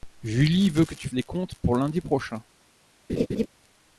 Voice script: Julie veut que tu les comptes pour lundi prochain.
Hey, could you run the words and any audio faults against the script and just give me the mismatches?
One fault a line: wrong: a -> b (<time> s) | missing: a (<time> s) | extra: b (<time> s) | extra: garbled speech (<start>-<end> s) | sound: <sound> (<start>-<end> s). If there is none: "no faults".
sound: laugh (3.1-3.5 s)